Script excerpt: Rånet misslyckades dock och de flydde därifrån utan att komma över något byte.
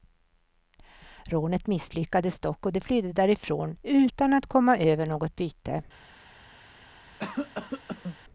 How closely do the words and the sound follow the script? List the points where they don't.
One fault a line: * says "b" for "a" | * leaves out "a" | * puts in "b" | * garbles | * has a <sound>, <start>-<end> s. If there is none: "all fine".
* has a cough, 7.2-8.2 s